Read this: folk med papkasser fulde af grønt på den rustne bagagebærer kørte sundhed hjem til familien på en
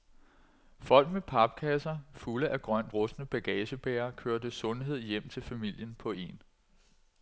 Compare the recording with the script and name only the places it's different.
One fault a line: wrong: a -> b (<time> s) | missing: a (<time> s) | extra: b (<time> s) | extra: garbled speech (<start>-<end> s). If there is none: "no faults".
missing: på den (3.0 s)